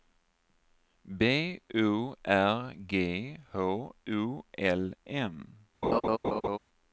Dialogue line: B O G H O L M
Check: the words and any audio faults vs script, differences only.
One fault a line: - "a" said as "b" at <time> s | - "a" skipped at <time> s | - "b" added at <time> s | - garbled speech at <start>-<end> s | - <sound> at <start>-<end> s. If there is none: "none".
- "R" added at 2.2 s
- laugh at 5.8-6.6 s